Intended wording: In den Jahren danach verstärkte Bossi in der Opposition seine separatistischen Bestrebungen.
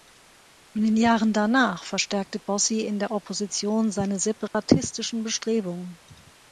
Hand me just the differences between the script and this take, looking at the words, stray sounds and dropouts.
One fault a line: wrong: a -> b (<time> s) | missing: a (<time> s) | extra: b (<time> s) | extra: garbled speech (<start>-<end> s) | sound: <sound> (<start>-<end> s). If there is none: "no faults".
sound: dropout (4.5-4.5 s)